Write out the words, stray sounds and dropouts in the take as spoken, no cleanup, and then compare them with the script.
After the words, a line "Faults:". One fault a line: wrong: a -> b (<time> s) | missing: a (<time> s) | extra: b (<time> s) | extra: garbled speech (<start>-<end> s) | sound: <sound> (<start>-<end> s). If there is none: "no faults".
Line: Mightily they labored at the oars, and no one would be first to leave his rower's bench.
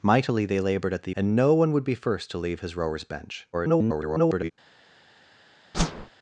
Mightily they labored at the and no one would be first to leave his rower's bench. [garbled]
Faults:
missing: oars (1.1 s)
extra: garbled speech (3.5-4.5 s)
sound: whoosh (5.7-6.1 s)